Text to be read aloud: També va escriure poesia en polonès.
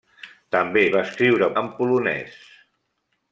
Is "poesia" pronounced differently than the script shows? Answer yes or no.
yes